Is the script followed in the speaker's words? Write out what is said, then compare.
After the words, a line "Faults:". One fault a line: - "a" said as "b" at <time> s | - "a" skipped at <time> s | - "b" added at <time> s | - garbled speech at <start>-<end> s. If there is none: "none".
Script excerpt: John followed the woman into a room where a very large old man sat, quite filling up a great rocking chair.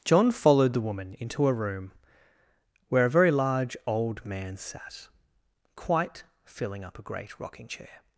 John followed the woman into a room where a very large old man sat, quite filling up a great rocking chair.
Faults:
none